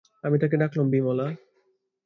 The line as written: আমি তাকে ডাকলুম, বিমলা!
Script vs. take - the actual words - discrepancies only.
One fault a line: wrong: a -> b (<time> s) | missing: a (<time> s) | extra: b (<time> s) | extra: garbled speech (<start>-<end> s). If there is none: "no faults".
no faults